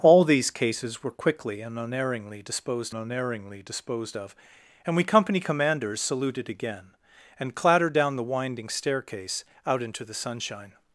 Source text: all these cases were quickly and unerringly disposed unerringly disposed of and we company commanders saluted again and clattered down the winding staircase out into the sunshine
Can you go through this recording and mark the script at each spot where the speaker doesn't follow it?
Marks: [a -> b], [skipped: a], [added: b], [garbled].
all these cases were quickly and unerringly disposed unerringly disposed of and we company commanders saluted again and clattered down the winding staircase out into the sunshine